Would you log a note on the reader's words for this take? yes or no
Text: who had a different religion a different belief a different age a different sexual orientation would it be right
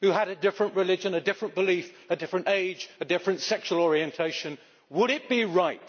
no